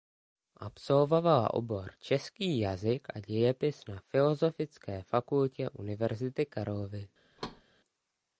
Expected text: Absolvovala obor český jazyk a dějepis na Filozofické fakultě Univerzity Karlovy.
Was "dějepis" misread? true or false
false